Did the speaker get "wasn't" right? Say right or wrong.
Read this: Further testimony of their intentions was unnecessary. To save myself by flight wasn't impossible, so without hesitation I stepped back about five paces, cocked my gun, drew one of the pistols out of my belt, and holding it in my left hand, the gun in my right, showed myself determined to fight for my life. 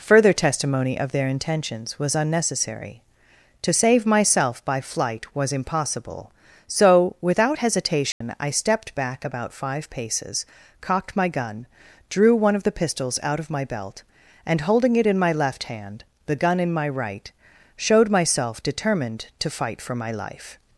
wrong